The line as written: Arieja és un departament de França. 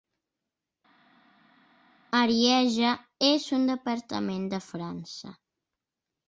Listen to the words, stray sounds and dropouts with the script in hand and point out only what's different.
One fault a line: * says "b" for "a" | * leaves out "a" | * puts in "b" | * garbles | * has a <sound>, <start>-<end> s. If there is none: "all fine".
all fine